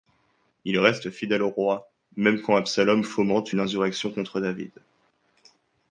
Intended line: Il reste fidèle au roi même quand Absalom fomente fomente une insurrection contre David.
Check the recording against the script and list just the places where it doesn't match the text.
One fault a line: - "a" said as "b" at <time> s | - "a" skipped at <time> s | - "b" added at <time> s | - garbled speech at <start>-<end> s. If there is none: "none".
- "fomente" skipped at 3.5 s